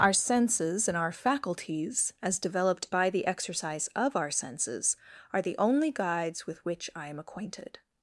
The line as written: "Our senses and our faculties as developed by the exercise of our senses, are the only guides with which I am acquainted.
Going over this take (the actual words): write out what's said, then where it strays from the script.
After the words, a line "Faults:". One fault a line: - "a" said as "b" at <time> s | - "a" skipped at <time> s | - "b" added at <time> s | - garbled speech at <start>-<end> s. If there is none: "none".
"Our senses and our faculties as developed by the exercise of our senses, are the only guides with which I am acquainted.
Faults:
none